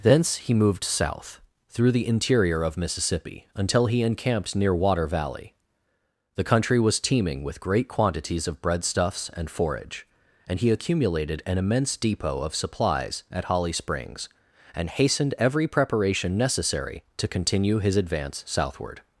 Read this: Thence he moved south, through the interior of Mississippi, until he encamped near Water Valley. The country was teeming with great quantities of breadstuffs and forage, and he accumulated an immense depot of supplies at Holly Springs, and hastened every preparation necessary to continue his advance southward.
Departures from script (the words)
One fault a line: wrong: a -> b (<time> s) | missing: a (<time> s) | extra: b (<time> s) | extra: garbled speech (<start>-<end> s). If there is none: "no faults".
no faults